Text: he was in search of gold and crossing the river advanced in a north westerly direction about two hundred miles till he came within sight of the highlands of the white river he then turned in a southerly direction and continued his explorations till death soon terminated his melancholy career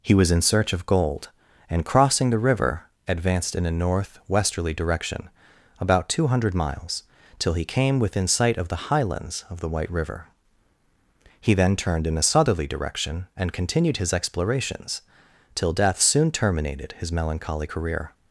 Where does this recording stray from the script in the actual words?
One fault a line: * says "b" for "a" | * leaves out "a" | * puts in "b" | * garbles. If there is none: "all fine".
all fine